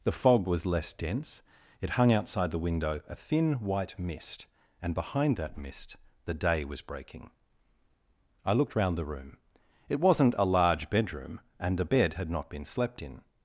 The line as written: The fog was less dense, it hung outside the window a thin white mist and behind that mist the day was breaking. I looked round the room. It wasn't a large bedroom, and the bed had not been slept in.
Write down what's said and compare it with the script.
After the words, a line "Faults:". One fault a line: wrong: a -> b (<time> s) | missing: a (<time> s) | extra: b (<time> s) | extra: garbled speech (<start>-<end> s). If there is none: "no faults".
The fog was less dense, it hung outside the window a thin white mist and behind that mist the day was breaking. I looked round the room. It wasn't a large bedroom, and the bed had not been slept in.
Faults:
no faults